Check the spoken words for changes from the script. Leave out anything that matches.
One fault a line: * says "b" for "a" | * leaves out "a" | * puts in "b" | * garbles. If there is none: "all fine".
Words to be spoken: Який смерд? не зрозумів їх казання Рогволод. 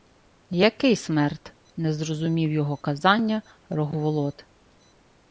* says "його" for "їх"